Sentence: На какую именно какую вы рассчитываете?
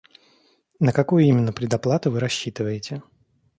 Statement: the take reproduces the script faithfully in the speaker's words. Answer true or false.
false